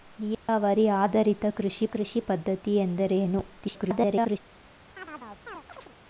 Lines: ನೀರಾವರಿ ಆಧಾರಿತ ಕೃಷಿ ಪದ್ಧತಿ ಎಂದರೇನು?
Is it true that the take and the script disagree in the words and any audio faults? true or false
true